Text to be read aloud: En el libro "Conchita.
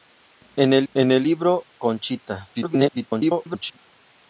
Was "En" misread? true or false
false